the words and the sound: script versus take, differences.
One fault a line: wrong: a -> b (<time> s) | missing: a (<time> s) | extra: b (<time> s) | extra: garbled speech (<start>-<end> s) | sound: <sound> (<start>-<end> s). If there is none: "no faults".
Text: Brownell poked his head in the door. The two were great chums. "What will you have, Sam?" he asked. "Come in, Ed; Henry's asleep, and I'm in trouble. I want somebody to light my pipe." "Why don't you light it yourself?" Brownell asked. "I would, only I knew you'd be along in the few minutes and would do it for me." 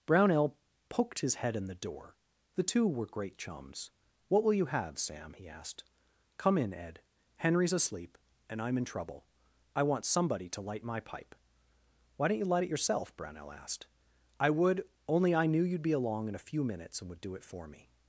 wrong: the -> a (16.4 s)